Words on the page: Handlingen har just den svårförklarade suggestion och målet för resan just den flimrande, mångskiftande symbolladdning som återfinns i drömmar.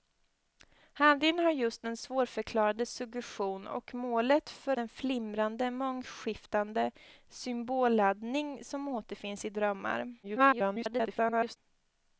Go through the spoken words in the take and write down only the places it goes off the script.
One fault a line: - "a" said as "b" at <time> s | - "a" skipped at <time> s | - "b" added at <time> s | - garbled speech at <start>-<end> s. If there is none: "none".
- "resan just" skipped at 4.8 s
- garbled speech at 10.2-11.6 s